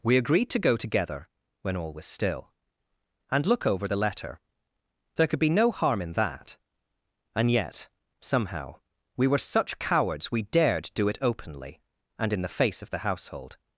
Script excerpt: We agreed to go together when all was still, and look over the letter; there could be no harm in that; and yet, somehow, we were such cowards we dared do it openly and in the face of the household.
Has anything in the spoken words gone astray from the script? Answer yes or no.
no